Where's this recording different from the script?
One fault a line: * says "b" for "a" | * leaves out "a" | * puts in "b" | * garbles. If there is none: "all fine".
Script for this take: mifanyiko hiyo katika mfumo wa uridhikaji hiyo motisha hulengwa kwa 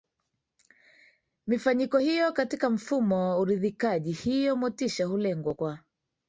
all fine